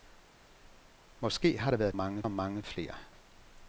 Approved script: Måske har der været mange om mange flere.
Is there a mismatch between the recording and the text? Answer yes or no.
no